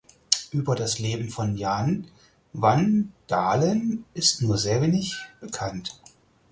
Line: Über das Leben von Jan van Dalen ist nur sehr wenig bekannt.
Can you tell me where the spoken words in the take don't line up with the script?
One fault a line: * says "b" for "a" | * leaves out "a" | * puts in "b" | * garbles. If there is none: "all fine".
all fine